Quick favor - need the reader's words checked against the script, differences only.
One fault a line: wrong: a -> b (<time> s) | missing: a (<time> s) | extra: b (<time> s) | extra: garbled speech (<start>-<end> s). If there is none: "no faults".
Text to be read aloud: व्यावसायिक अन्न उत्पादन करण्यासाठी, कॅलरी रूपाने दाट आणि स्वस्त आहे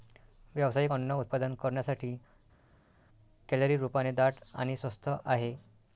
no faults